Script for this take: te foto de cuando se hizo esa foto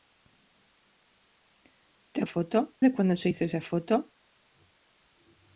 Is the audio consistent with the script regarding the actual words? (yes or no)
yes